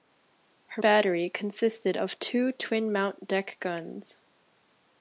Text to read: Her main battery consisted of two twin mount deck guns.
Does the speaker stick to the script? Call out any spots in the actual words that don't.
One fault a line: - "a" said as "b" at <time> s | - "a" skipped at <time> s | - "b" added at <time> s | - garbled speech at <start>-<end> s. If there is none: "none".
- "main" skipped at 0.8 s